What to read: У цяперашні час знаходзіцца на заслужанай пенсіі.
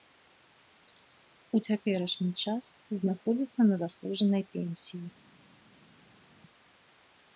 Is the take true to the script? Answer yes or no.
yes